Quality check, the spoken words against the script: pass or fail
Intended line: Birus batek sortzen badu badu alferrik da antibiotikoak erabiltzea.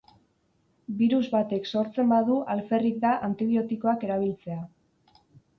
fail